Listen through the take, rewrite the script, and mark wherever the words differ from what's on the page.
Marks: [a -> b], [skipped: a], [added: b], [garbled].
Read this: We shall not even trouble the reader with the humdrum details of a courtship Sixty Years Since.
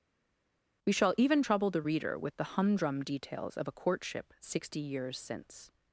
We shall [skipped: not] even trouble the reader with the humdrum details of a courtship Sixty Years Since.